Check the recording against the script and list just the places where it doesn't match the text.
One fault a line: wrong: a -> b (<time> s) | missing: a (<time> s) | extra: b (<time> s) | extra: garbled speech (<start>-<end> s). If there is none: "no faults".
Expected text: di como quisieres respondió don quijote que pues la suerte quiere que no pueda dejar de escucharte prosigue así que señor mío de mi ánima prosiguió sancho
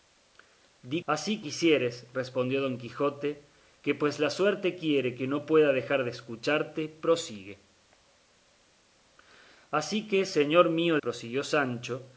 wrong: como -> así (1.0 s)
missing: de mi ánima (11.0 s)